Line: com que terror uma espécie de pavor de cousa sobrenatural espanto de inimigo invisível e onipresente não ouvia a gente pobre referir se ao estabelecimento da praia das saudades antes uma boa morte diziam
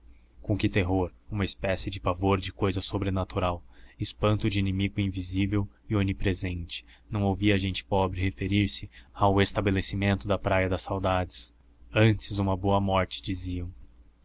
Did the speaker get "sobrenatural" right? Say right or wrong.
right